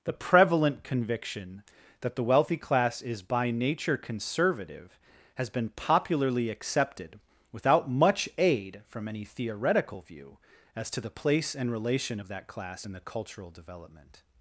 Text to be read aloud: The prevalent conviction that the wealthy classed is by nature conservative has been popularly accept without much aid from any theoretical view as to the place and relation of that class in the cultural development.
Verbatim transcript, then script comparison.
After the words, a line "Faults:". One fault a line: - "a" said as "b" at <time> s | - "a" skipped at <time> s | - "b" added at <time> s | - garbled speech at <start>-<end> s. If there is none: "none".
The prevalent conviction that the wealthy class is by nature conservative has been popularly accepted without much aid from any theoretical view as to the place and relation of that class in the cultural development.
Faults:
- "classed" said as "class" at 2.6 s
- "accept" said as "accepted" at 6.5 s